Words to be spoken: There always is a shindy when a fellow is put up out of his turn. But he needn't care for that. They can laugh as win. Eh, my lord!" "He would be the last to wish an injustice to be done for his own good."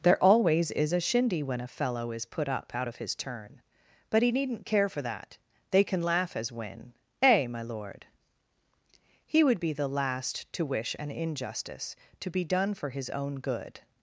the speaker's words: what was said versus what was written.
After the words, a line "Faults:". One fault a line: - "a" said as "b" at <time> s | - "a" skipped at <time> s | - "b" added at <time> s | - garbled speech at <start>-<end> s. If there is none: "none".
There always is a shindy when a fellow is put up out of his turn. But he needn't care for that. They can laugh as win. Eh, my lord!" "He would be the last to wish an injustice to be done for his own good."
Faults:
none